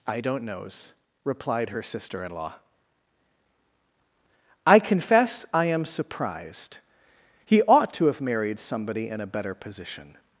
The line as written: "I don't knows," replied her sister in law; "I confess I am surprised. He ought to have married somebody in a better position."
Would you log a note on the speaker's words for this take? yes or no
no